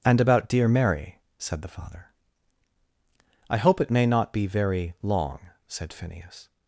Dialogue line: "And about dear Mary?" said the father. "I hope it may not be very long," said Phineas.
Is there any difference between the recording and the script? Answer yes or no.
no